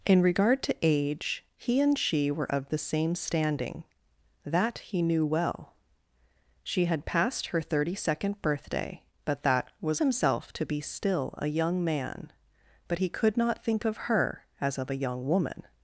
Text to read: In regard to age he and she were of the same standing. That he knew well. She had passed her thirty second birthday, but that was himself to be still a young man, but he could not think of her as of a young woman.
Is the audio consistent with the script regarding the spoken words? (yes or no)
yes